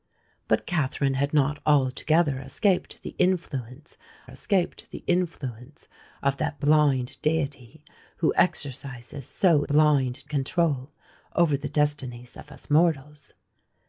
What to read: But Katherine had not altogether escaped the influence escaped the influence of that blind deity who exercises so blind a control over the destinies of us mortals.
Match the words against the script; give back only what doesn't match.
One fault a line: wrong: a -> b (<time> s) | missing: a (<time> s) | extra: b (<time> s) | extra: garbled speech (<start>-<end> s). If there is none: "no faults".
no faults